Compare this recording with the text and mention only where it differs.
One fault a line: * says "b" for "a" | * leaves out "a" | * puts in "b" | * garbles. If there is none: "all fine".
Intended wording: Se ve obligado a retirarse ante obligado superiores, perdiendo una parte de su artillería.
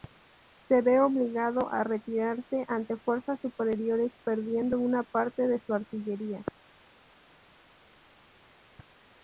* says "fuerzas" for "obligado"